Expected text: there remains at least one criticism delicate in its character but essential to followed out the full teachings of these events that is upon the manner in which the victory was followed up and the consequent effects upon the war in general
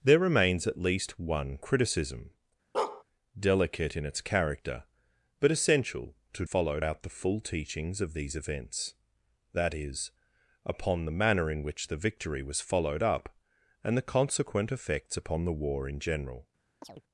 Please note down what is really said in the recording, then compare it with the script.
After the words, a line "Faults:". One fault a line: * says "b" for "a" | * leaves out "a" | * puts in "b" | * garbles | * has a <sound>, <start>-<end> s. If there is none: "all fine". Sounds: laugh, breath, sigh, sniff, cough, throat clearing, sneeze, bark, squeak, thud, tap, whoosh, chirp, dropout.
there remains at least one criticism delicate in its character but essential to followed out the full teachings of these events that is upon the manner in which the victory was followed up and the consequent effects upon the war in general
Faults:
* has a bark, 2.7-3.0 s
* has a chirp, 16.8-17.0 s